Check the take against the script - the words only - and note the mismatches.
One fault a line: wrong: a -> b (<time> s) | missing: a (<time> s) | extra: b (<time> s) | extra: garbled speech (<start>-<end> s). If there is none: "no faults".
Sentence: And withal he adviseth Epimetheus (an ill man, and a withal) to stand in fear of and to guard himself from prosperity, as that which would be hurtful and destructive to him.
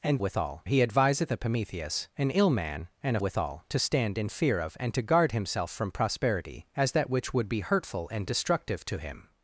no faults